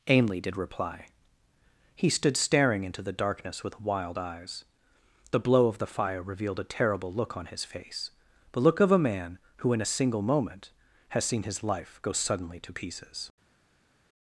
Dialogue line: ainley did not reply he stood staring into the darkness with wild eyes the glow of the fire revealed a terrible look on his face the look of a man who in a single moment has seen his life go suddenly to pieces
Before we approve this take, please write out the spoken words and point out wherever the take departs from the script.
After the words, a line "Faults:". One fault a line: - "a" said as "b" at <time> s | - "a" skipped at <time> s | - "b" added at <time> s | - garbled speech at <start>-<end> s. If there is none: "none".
ainley did reply he stood staring into the darkness with wild eyes the blow of the fire revealed a terrible look on his face the look of a man who in a single moment has seen his life go suddenly to pieces
Faults:
- "not" skipped at 0.6 s
- "glow" said as "blow" at 5.4 s